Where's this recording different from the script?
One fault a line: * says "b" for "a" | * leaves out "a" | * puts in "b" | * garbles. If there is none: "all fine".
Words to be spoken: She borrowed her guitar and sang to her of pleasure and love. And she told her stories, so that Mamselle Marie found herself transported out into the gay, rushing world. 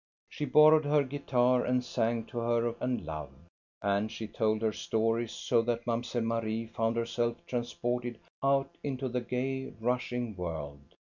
* leaves out "pleasure"